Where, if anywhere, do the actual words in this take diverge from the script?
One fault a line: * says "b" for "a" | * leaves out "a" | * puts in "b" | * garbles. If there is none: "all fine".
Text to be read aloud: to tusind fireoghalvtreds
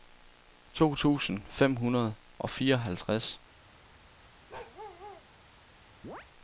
* puts in "fem hundrede og"